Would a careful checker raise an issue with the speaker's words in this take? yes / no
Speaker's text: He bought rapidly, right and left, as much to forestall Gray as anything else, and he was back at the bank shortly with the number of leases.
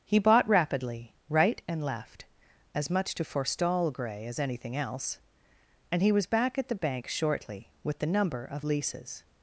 no